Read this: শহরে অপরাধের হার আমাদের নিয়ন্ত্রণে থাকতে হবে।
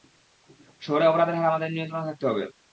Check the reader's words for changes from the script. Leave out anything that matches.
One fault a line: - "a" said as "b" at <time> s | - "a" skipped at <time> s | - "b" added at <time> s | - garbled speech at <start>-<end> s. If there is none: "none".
none